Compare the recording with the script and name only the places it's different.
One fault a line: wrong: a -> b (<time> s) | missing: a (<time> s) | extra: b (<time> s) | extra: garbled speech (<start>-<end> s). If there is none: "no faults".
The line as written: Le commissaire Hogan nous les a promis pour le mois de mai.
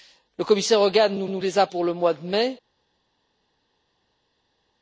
extra: nous (1.3 s)
missing: promis (1.7 s)